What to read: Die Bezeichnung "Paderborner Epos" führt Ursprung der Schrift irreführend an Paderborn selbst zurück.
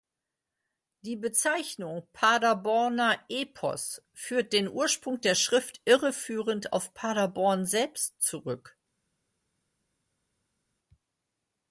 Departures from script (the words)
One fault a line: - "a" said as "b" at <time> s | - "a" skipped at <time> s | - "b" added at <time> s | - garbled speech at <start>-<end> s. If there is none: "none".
- "den" added at 4.5 s
- "an" said as "auf" at 6.7 s